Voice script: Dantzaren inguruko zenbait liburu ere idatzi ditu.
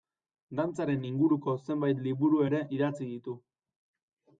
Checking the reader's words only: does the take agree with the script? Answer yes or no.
yes